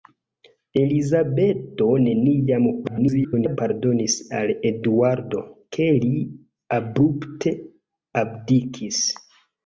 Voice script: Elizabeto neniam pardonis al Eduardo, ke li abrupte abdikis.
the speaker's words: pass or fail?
fail